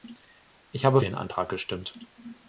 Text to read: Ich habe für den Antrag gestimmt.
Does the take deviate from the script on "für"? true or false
true